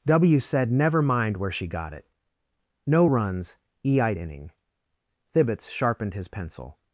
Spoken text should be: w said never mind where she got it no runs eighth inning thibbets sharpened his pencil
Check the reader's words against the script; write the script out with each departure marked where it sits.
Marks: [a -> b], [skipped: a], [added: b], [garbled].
w said never mind where she got it no runs [eighth -> e eyed] inning thibbets sharpened his pencil